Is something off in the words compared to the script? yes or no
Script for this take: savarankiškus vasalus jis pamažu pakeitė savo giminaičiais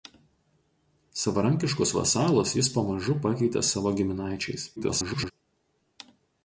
yes